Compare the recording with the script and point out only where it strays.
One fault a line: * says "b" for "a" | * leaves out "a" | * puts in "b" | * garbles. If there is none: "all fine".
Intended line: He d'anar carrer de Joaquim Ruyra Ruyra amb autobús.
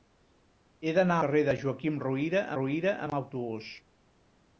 all fine